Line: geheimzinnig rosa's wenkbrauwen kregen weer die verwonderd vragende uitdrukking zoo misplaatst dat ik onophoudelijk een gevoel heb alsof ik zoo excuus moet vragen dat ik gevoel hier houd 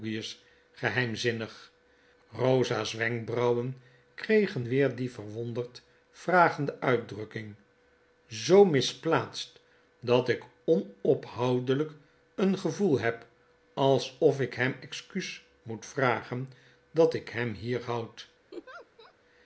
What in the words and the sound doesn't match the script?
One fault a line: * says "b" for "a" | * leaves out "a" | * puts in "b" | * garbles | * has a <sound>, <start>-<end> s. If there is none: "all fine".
* says "hem" for "zoo"
* says "hem" for "gevoel"
* has a laugh, 18.5-19.1 s